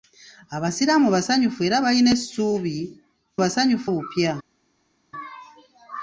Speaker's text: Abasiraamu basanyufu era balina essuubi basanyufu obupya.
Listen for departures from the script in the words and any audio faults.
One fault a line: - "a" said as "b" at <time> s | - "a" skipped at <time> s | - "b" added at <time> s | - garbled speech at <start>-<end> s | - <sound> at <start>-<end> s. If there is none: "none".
none